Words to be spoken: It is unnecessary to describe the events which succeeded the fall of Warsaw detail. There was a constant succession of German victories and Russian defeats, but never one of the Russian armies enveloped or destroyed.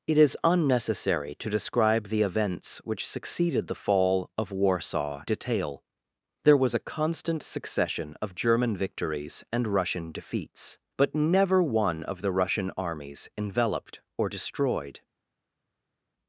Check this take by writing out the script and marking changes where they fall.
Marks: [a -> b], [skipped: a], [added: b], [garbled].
It is unnecessary to describe the events which succeeded the fall of Warsaw detail. There was a constant succession of German victories and Russian defeats, but never one of the Russian armies enveloped or destroyed.